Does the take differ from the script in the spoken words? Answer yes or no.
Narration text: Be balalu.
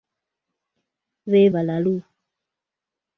no